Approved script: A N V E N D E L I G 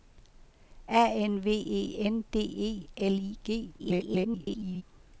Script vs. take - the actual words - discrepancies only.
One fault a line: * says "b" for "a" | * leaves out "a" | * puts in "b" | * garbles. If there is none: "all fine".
* garbles